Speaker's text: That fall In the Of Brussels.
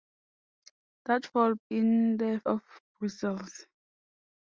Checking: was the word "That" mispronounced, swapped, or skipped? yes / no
no